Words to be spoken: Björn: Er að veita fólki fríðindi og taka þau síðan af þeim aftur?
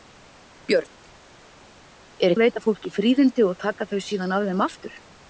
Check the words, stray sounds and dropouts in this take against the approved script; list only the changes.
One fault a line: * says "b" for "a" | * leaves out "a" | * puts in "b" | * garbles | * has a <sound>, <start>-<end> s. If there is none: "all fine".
all fine